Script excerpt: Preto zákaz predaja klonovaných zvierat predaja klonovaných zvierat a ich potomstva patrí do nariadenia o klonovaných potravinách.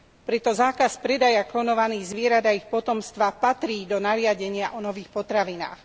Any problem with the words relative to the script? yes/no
yes